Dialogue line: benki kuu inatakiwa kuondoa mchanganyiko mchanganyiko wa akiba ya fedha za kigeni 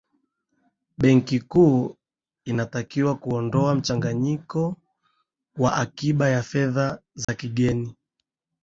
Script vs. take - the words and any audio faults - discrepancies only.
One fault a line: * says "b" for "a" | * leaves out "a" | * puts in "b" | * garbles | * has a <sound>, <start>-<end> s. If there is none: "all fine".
* leaves out "mchanganyiko"
* has a dropout, 7.2-7.3 s